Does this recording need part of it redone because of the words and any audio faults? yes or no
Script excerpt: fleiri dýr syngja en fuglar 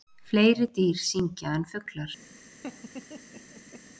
yes